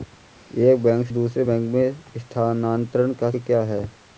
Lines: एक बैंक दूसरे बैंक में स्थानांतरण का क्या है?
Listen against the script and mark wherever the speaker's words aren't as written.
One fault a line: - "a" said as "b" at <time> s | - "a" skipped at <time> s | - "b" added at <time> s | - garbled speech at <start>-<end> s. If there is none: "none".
none